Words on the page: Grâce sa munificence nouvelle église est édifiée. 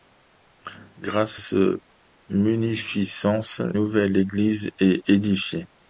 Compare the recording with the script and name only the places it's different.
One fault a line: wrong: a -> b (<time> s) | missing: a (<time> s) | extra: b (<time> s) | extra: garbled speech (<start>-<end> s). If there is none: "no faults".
no faults